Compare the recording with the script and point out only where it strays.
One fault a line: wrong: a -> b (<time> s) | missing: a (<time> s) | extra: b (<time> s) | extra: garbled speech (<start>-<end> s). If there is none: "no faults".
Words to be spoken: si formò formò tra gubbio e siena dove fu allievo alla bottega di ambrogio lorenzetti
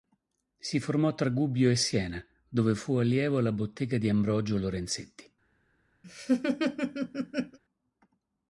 missing: formò (1.1 s)